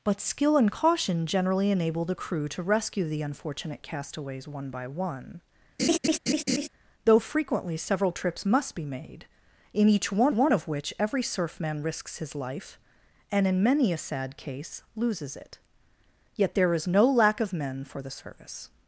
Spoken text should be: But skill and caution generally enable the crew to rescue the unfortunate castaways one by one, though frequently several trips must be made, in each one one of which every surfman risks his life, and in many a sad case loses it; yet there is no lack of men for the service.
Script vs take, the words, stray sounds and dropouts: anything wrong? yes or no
yes